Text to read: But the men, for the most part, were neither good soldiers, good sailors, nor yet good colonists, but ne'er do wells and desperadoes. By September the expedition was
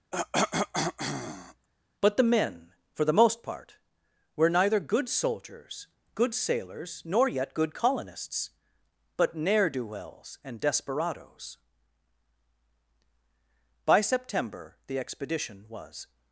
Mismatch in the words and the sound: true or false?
true